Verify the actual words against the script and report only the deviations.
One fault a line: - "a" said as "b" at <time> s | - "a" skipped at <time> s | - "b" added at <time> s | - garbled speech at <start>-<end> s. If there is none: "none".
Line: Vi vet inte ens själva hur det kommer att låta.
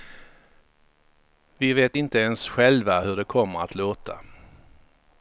none